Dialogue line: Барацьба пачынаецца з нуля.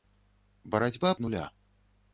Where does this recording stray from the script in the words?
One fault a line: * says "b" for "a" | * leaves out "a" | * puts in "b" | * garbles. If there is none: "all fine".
* leaves out "пачынаецца"